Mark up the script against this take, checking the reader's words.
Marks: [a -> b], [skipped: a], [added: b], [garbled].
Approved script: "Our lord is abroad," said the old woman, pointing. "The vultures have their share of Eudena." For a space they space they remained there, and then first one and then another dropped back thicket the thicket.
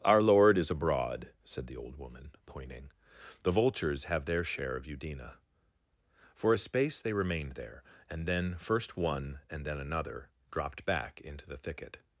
"Our lord is abroad," said the old woman, pointing. "The vultures have their share of Eudena." For a space they [skipped: space they] remained there, and then first one and then another dropped back [thicket -> into] the thicket.